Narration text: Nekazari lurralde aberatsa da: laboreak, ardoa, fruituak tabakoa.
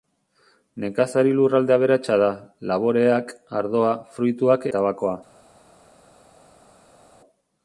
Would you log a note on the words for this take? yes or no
no